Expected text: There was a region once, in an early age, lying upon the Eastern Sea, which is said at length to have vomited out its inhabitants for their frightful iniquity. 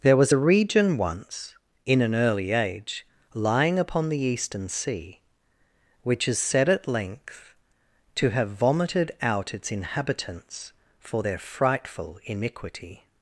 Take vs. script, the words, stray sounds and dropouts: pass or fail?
pass